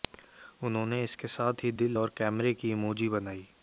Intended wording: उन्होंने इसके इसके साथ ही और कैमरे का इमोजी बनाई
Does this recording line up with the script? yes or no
no